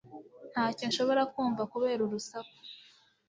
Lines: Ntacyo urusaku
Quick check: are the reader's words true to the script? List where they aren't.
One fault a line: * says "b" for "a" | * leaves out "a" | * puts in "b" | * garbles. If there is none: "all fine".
* puts in "nshobora kumva kubera"